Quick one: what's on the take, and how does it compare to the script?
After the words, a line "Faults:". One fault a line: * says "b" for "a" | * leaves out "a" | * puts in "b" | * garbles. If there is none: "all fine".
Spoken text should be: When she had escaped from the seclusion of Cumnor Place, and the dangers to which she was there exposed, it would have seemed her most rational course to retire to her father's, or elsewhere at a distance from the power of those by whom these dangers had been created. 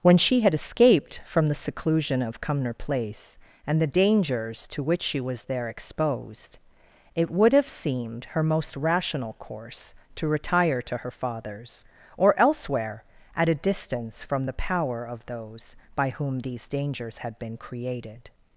When she had escaped from the seclusion of Cumnor Place, and the dangers to which she was there exposed, it would have seemed her most rational course to retire to her father's, or elsewhere at a distance from the power of those by whom these dangers had been created.
Faults:
all fine